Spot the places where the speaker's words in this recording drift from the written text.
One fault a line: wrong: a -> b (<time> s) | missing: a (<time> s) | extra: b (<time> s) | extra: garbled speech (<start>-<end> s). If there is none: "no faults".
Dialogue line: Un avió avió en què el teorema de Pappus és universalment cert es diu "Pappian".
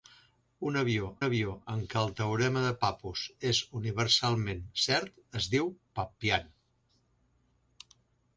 no faults